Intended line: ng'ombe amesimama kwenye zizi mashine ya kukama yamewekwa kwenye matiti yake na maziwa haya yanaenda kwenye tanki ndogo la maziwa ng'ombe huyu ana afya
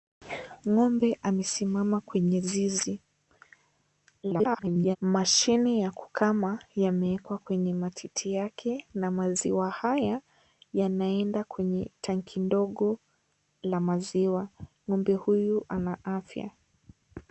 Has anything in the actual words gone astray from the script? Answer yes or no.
yes